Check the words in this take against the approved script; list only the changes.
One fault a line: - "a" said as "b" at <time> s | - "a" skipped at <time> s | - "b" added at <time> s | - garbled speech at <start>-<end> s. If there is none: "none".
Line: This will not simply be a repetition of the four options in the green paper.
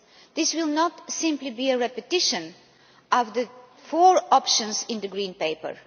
none